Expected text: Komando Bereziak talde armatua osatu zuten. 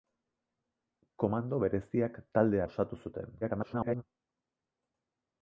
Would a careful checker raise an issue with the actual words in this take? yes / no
yes